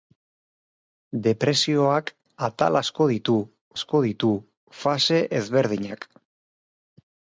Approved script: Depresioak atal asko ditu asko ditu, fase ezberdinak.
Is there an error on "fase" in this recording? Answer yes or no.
no